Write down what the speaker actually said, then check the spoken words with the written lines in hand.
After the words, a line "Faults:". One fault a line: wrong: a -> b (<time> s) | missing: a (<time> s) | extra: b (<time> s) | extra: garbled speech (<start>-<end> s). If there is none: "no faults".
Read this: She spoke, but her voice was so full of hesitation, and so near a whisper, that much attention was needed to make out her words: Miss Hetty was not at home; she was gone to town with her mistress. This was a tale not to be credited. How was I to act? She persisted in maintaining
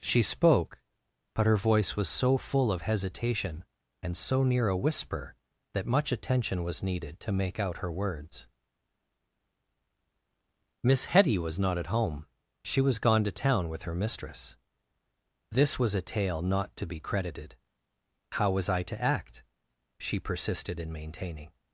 She spoke, but her voice was so full of hesitation, and so near a whisper, that much attention was needed to make out her words: Miss Hetty was not at home; she was gone to town with her mistress. This was a tale not to be credited. How was I to act? She persisted in maintaining
Faults:
no faults